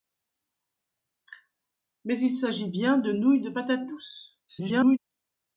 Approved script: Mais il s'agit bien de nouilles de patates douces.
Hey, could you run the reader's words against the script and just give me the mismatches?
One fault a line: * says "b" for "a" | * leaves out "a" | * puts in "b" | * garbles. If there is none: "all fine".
* garbles